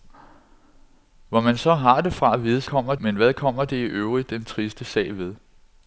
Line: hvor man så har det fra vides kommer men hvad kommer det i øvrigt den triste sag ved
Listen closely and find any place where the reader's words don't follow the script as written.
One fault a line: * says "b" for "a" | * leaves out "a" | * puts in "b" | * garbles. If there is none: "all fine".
all fine